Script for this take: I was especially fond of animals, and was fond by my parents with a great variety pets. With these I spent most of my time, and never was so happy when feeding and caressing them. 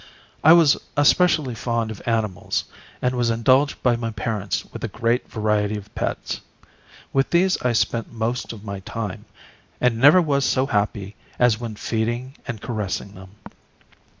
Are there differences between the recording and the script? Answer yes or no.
yes